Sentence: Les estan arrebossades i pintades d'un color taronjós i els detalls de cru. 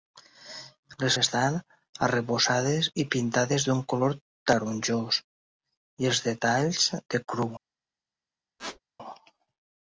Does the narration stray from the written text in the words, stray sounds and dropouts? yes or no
yes